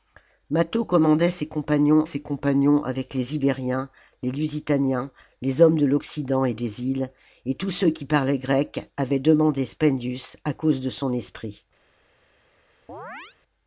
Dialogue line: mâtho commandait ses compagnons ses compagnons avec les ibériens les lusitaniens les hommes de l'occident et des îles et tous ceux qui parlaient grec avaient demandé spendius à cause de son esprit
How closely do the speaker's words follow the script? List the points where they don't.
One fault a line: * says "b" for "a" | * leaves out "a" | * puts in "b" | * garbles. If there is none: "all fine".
all fine